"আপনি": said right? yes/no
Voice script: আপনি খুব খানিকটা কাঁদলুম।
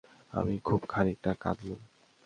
no